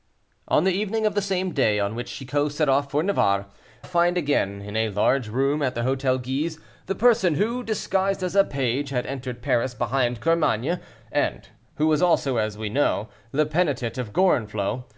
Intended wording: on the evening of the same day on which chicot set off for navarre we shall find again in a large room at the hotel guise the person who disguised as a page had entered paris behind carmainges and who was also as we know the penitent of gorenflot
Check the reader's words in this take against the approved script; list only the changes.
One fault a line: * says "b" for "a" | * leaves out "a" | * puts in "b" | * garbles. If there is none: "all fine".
* leaves out "we shall"